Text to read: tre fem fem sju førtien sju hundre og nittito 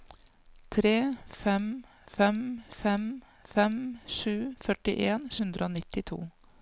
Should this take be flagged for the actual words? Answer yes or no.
yes